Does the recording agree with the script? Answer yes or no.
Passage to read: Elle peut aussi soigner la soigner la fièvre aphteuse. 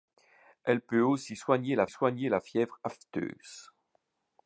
yes